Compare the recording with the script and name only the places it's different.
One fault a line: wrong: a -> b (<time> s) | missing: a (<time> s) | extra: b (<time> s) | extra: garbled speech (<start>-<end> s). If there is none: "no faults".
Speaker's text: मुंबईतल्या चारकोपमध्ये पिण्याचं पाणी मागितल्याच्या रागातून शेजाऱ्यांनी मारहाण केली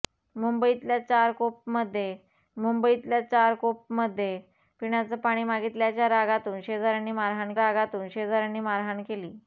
extra: मुंबईतल्या चारकोपमध्ये (2.6 s)
extra: रागातून शेजाऱ्यांनी मारहाण (7.5 s)